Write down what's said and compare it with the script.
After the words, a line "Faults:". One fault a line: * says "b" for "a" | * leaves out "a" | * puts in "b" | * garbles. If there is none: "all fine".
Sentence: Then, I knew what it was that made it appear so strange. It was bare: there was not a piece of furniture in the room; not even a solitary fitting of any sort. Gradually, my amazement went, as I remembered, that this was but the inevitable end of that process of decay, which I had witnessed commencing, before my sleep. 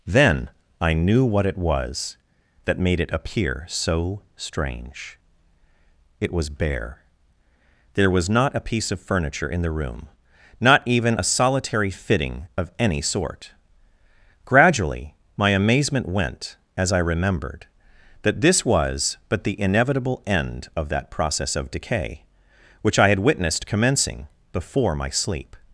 Then, I knew what it was that made it appear so strange. It was bare: there was not a piece of furniture in the room; not even a solitary fitting of any sort. Gradually, my amazement went, as I remembered, that this was but the inevitable end of that process of decay, which I had witnessed commencing, before my sleep.
Faults:
all fine